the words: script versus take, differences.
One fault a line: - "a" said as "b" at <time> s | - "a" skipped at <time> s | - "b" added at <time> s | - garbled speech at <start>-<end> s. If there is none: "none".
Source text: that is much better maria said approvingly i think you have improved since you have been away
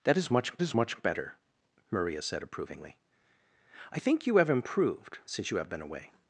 - "is much" added at 0.6 s